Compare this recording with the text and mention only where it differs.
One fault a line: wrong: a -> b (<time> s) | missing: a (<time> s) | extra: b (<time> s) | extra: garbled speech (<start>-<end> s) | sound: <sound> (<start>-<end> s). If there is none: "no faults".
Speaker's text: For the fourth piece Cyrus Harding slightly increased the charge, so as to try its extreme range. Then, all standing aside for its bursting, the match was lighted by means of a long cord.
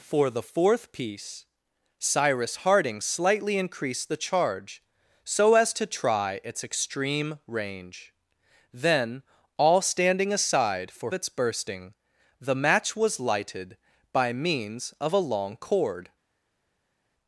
no faults